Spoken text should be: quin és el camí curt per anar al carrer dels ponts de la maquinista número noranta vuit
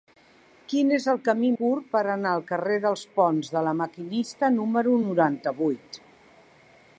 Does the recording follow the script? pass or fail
pass